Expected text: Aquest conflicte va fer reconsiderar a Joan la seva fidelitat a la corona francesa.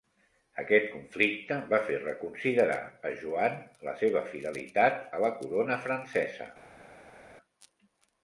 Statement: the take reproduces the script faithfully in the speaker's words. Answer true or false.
true